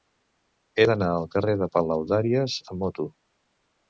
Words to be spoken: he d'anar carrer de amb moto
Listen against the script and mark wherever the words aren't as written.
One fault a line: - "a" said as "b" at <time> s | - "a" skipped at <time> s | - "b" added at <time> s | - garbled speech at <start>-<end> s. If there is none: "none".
- "al" added at 1.1 s
- "palaudàries" added at 1.8 s